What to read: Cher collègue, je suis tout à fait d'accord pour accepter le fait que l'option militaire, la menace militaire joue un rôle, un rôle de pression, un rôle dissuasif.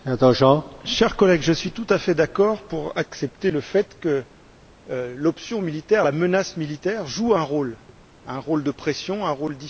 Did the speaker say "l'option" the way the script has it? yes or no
yes